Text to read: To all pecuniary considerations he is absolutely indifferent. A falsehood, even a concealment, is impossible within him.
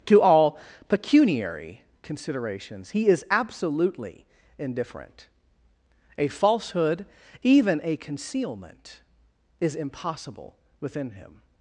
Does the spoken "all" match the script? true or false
true